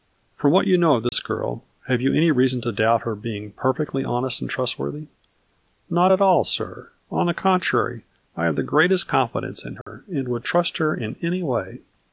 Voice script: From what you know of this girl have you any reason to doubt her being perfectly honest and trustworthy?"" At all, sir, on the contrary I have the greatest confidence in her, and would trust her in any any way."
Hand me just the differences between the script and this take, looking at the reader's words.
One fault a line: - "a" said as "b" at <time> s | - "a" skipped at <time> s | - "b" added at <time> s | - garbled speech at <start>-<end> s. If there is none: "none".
- "Not" added at 5.9 s
- "any" skipped at 11.4 s